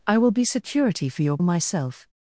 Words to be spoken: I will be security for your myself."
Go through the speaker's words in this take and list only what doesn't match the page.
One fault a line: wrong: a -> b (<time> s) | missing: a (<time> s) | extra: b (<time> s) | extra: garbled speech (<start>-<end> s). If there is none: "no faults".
no faults